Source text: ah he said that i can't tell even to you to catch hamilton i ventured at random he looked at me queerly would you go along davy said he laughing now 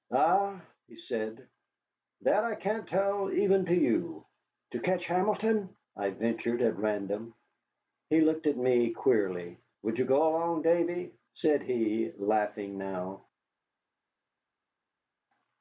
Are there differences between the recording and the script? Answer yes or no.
no